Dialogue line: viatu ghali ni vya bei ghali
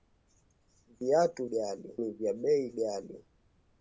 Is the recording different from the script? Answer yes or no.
no